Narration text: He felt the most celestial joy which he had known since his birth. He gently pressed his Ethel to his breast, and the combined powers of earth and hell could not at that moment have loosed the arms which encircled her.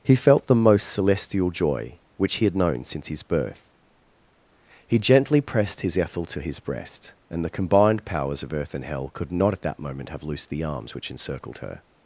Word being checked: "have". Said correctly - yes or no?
yes